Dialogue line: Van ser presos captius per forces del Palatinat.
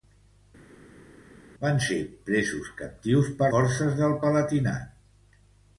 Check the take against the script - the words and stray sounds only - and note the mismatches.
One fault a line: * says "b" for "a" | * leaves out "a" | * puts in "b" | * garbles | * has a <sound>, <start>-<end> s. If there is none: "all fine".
all fine